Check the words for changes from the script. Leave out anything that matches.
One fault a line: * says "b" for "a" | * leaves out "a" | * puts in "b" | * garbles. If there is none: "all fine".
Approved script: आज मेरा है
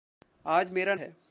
all fine